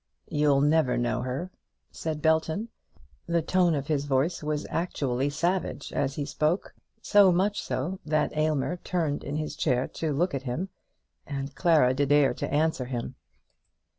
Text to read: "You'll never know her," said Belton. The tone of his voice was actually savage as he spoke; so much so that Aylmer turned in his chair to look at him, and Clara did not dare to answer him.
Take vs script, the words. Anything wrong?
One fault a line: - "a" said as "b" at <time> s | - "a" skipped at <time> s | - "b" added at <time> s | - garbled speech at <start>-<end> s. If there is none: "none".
- "not" skipped at 12.1 s